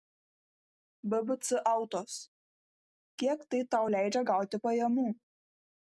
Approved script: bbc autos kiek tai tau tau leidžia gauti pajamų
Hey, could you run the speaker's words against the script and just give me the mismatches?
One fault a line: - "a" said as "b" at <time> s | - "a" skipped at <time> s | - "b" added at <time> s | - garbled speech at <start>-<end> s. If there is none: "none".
- "tau" skipped at 3.9 s